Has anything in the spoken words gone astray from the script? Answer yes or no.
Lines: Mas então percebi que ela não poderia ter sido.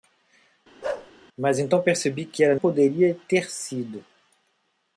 yes